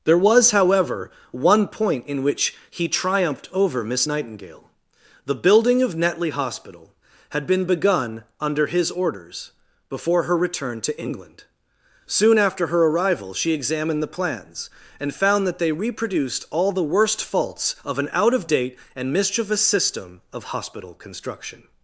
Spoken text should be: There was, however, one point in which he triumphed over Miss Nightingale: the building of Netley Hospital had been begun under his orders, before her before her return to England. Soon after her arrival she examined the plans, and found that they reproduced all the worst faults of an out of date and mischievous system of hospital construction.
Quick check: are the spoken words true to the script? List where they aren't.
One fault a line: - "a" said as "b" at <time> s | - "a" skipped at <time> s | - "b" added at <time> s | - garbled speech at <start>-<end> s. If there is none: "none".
- "before her" skipped at 10.4 s